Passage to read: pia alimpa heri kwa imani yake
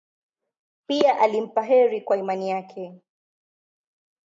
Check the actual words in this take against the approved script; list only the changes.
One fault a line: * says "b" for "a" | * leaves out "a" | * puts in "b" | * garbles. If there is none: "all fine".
all fine